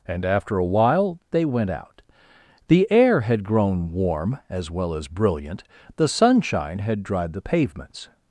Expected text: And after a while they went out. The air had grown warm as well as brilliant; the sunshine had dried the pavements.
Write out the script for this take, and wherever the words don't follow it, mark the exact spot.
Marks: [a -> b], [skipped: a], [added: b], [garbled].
And after a while they went out. The air had grown warm as well as brilliant; the sunshine had dried the pavements.